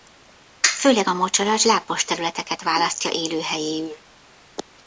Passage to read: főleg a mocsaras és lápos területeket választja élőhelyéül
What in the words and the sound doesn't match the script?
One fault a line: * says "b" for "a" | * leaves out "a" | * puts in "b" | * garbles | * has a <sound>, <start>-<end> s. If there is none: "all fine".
* leaves out "és"